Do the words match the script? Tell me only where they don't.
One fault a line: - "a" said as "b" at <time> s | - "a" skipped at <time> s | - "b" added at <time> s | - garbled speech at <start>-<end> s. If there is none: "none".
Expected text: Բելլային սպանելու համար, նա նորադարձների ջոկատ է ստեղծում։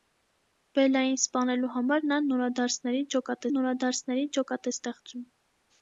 - "նորադարձների ջոկատ" added at 3.5 s